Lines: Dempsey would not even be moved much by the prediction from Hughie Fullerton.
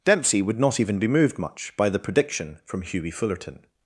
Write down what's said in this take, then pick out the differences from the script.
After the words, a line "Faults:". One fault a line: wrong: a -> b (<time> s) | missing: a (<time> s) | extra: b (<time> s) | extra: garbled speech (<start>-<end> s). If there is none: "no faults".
Dempsey would not even be moved much by the prediction from Hughie Fullerton.
Faults:
no faults